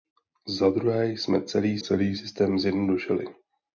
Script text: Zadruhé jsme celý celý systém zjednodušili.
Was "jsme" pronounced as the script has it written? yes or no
yes